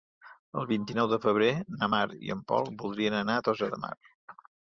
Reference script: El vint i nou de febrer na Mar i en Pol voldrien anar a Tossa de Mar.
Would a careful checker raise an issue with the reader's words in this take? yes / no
no